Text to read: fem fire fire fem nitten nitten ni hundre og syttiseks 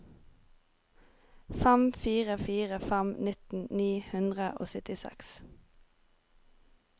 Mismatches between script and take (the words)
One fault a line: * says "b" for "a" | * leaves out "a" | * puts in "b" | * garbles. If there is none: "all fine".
* leaves out "nitten"